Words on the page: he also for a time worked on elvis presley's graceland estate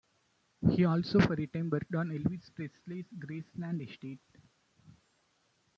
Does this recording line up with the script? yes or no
yes